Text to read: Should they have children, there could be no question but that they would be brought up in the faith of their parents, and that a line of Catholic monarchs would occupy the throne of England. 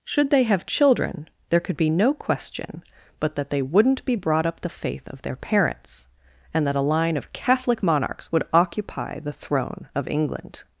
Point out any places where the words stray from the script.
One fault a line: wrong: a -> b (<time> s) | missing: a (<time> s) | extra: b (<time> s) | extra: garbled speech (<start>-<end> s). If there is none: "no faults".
wrong: would -> wouldn't (3.6 s)
missing: in (4.6 s)